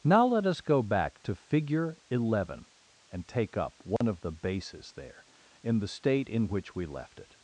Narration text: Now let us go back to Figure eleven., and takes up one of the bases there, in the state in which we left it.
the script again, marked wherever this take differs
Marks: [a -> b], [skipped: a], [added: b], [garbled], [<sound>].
Now let us go back to Figure eleven., and [takes -> take] up one [dropout] of the bases there, in the state in which we left it.